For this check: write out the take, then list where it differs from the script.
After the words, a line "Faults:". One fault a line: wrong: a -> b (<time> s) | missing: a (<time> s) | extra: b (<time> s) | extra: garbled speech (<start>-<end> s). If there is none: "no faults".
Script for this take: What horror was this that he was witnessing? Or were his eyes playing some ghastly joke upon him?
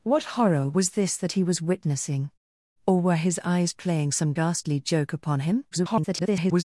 What horror was this that he was witnessing? Or were his eyes playing some ghastly joke upon him? [garbled]
Faults:
extra: garbled speech (5.7-6.6 s)